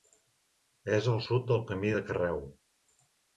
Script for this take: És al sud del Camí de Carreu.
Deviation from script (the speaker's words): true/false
false